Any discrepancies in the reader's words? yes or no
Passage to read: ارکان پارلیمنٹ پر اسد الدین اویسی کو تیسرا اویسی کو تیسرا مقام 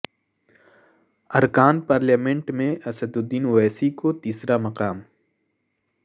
yes